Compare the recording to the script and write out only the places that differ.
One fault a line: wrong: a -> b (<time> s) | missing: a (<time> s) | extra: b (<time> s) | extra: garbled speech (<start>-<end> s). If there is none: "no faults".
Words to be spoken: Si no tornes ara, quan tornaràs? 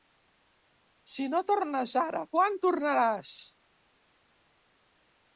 no faults